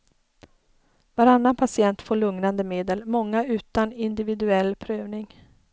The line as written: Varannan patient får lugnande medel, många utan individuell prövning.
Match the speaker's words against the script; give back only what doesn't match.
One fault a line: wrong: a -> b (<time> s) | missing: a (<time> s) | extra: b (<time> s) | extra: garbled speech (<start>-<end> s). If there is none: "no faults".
no faults